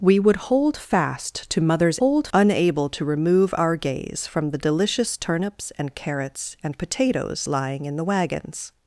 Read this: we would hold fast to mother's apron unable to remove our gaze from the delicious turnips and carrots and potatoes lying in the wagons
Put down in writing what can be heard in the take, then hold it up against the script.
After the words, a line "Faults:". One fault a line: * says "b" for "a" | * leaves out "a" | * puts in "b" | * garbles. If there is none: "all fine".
we would hold fast to mother's hold unable to remove our gaze from the delicious turnips and carrots and potatoes lying in the wagons
Faults:
* says "hold" for "apron"